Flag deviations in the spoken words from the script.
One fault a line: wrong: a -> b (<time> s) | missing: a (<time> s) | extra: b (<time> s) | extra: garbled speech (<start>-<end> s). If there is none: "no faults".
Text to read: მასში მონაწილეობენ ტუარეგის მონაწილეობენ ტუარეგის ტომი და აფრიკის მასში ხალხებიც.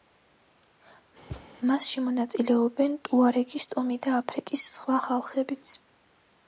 missing: მონაწილეობენ ტუარეგის (3.6 s)
wrong: მასში -> სხვა (4.7 s)